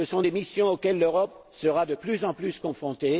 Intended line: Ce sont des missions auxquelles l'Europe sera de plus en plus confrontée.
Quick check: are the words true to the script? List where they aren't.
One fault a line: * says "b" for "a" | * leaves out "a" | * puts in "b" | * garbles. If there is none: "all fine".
all fine